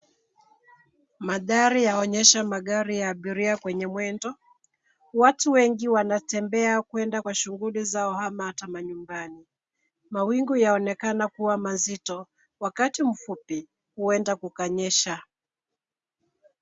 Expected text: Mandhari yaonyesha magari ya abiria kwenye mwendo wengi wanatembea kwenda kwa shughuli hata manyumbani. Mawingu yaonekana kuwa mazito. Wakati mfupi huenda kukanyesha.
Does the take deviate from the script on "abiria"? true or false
false